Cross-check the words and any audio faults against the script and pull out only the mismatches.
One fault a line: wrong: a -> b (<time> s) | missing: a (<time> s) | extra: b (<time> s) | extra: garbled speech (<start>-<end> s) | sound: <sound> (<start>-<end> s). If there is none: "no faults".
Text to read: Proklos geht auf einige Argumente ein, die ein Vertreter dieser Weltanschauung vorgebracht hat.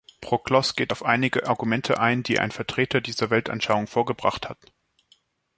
no faults